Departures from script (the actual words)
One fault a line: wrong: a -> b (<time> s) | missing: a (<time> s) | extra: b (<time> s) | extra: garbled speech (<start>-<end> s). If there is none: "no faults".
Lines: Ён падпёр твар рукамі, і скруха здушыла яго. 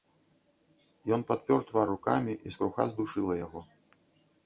no faults